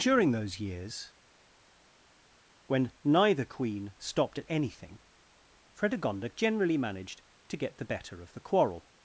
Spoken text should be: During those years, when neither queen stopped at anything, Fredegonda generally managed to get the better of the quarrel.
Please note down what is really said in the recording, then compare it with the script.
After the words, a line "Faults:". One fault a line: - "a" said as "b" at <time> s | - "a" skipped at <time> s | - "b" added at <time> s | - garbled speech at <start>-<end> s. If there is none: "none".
During those years, when neither queen stopped at anything, Fredegonda generally managed to get the better of the quarrel.
Faults:
none